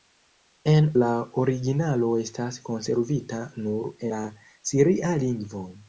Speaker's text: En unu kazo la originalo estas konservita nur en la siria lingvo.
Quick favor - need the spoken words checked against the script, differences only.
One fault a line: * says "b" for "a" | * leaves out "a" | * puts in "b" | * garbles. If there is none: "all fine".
* leaves out "unu kazo"
* leaves out "en"